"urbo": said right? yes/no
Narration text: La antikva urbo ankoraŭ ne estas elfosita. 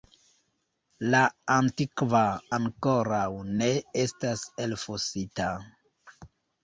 no